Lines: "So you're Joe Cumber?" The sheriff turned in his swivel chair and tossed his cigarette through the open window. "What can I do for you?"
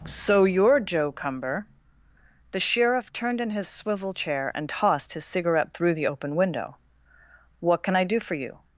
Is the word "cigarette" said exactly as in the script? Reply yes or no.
yes